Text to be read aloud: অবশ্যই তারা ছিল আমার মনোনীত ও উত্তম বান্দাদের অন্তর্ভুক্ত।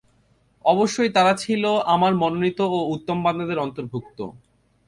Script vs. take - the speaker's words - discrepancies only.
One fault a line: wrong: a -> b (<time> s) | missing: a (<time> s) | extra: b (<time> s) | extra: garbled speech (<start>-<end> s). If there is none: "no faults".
no faults